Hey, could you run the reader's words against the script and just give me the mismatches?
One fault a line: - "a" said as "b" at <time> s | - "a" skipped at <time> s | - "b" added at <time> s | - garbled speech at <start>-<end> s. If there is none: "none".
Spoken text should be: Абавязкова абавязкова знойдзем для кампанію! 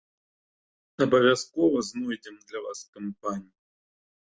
- "абавязкова" skipped at 1.8 s
- "вас" added at 2.6 s